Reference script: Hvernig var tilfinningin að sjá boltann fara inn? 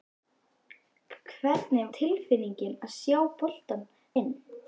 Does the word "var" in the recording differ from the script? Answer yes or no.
yes